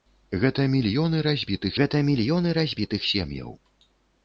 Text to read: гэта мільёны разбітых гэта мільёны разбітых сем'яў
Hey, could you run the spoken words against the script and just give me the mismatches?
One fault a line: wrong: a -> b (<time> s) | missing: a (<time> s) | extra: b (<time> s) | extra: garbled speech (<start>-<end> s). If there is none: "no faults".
no faults